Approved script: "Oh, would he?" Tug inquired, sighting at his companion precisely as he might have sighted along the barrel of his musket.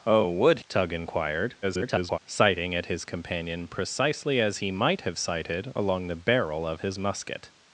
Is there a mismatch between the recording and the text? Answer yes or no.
yes